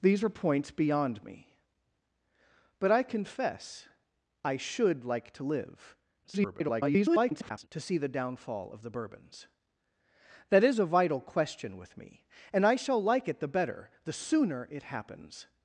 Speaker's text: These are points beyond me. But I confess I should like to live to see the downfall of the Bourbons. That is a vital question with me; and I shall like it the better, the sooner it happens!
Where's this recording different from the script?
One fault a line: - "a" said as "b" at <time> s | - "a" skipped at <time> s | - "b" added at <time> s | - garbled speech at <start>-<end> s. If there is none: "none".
- garbled speech at 6.2-7.7 s